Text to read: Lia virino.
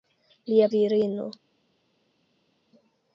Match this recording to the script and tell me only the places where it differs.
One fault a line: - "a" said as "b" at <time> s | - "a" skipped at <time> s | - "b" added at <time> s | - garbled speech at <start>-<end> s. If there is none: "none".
none